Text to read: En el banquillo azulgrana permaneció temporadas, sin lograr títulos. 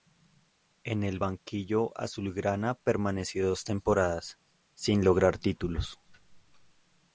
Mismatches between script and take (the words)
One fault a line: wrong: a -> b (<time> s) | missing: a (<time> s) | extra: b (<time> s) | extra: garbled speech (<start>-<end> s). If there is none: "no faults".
extra: dos (3.5 s)